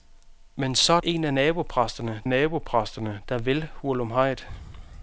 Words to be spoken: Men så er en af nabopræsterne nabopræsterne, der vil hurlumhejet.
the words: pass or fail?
pass